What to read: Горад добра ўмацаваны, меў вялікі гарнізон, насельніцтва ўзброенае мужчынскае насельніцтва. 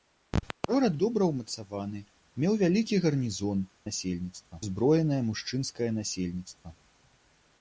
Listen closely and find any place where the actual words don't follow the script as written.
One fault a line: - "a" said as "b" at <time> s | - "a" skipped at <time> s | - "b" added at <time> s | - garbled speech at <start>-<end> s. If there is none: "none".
none